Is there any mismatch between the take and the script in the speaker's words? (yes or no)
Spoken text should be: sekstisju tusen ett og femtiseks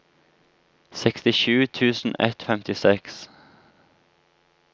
no